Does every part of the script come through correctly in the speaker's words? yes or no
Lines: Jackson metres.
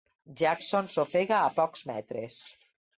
no